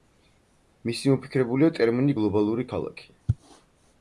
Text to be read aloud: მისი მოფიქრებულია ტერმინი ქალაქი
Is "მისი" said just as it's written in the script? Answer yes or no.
yes